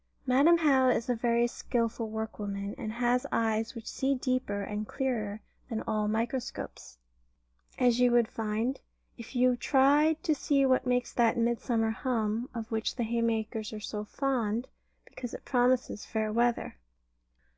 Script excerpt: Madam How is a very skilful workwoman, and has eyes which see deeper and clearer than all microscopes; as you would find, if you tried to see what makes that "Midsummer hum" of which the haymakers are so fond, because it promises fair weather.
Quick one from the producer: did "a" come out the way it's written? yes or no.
yes